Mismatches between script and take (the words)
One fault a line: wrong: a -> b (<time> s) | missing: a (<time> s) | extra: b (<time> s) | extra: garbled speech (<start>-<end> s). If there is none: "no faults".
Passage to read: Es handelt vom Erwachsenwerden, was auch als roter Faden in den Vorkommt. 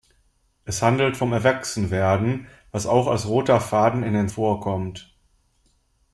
no faults